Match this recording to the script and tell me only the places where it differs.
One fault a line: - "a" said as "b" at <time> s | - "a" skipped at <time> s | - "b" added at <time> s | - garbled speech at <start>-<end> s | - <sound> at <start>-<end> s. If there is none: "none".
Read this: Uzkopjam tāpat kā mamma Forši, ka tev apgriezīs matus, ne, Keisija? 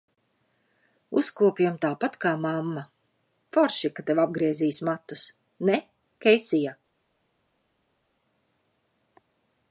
none